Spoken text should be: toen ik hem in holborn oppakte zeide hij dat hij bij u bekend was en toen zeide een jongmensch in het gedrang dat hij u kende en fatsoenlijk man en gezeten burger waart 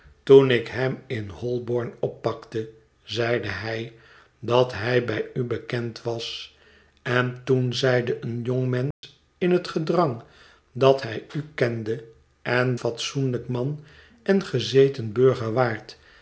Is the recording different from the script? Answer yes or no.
no